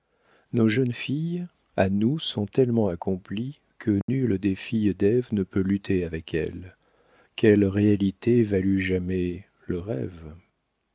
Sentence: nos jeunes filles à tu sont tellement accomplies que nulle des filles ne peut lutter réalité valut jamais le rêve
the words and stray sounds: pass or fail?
fail